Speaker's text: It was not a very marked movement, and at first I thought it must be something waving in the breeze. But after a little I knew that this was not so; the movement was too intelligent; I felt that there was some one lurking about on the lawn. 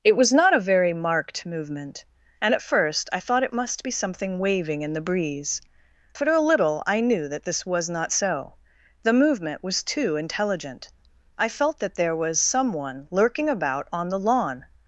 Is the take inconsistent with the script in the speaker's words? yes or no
yes